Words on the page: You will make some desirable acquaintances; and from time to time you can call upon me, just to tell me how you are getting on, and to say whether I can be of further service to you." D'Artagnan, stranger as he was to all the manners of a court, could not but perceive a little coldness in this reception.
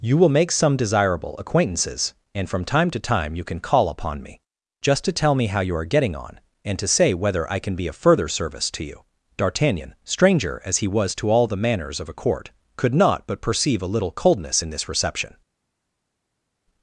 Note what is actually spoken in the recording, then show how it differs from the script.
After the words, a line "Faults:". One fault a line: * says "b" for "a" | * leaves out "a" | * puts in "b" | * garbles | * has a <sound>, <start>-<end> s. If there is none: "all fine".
You will make some desirable acquaintances; and from time to time you can call upon me, just to tell me how you are getting on, and to say whether I can be of further service to you." D'Artagnan, stranger as he was to all the manners of a court, could not but perceive a little coldness in this reception.
Faults:
all fine